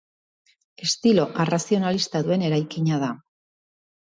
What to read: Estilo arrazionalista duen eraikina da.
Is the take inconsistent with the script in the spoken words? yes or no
no